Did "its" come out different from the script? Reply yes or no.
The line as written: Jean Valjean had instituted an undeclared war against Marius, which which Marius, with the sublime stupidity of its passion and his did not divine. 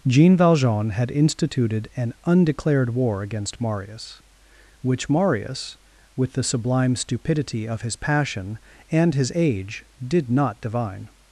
yes